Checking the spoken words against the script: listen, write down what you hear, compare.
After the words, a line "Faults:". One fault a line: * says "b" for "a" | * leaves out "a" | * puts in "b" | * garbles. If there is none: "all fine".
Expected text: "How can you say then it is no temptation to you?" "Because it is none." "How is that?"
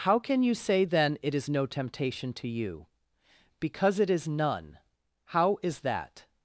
"How can you say then it is no temptation to you?" "Because it is none." "How is that?"
Faults:
all fine